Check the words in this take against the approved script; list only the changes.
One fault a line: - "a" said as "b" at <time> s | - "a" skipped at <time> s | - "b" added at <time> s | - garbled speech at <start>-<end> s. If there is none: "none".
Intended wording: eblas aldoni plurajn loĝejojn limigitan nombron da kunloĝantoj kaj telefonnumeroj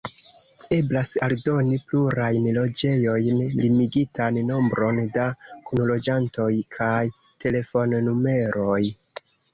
none